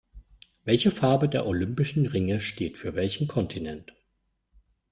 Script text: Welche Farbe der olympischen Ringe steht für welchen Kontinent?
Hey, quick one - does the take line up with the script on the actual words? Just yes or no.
yes